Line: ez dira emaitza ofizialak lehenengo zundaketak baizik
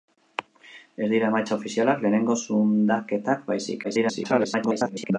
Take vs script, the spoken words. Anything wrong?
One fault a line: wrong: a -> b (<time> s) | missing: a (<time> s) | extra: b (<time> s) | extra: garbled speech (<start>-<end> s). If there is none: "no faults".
extra: garbled speech (3.8-5.2 s)